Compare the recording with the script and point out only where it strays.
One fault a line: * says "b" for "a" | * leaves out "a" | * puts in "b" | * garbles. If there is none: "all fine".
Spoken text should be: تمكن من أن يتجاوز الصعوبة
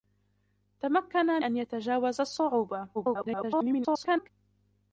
* leaves out "من"
* garbles